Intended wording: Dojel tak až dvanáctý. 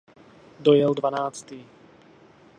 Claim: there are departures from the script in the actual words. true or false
true